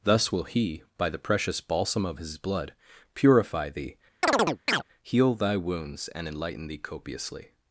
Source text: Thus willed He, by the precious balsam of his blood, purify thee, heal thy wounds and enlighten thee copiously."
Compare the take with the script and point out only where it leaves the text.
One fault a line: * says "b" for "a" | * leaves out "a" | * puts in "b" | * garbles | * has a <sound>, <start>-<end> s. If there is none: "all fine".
* says "will" for "willed"
* has a chirp, 4.2-4.8 s